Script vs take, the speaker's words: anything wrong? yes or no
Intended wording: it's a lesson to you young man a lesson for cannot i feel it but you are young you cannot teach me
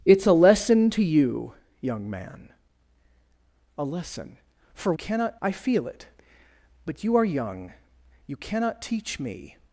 no